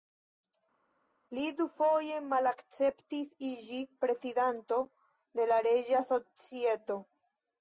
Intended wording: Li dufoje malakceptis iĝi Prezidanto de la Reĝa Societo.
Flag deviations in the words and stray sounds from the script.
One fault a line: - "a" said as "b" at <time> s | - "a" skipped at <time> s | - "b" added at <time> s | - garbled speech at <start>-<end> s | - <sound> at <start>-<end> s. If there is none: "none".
none